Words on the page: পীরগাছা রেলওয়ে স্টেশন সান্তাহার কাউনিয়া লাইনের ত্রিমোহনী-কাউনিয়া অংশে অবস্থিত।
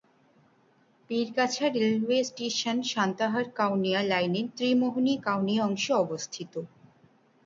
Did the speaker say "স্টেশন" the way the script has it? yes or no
yes